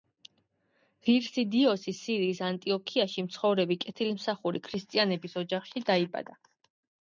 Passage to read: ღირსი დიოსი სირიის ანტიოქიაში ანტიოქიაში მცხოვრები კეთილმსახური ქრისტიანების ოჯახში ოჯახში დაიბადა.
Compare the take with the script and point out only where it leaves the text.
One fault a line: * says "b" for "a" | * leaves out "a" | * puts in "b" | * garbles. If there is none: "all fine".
* leaves out "ანტიოქიაში"
* leaves out "ოჯახში"